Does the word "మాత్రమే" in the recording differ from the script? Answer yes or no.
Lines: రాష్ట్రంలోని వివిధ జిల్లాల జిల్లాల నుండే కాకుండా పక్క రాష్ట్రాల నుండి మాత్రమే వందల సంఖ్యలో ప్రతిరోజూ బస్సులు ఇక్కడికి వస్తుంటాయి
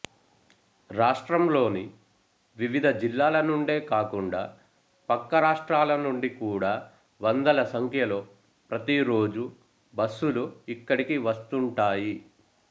yes